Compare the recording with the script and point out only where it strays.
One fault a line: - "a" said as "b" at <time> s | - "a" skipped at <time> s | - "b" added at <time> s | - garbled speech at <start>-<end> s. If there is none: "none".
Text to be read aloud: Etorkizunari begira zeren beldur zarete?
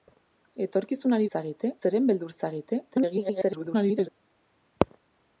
- "begira" said as "zarete" at 1.3 s
- garbled speech at 2.9-4.1 s